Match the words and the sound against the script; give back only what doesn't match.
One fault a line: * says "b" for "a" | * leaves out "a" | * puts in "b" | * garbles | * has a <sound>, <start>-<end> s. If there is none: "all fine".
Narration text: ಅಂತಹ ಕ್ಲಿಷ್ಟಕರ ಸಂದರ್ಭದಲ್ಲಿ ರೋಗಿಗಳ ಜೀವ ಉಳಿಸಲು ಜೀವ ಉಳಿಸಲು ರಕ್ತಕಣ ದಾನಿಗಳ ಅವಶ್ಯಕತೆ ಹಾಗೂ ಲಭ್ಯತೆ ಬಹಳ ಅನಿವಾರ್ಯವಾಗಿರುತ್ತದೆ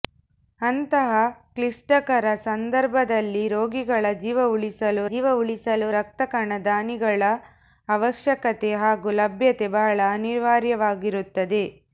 all fine